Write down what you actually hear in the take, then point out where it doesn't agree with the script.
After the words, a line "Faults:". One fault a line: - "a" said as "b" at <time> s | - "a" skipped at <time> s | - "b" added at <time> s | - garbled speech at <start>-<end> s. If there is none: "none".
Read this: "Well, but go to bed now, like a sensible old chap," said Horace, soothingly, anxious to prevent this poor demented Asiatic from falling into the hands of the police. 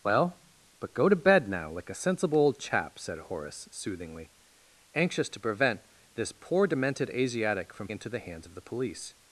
"Well, but go to bed now, like a sensible old chap," said Horace, soothingly, anxious to prevent this poor demented Asiatic from into the hands of the police.
Faults:
- "falling" skipped at 7.9 s